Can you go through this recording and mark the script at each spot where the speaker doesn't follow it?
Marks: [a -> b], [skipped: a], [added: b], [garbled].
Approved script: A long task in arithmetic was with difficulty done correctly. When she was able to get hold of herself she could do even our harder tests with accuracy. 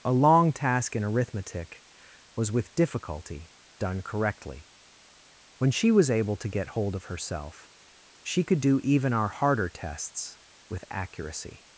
A long task in arithmetic was with difficulty done correctly. When she was able to get hold of herself she could do even our harder tests with accuracy.